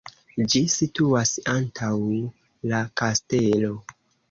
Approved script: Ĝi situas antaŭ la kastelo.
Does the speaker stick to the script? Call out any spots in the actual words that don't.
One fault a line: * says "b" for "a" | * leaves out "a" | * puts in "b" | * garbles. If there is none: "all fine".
all fine